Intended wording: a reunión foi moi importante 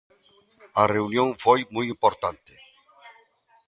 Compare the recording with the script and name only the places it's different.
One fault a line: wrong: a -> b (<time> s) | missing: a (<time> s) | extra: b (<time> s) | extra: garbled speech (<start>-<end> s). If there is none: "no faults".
no faults